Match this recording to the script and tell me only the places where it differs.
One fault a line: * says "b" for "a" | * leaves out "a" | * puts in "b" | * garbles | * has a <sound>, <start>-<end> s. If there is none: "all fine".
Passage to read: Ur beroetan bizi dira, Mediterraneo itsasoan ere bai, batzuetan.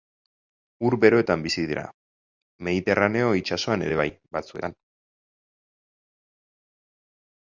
all fine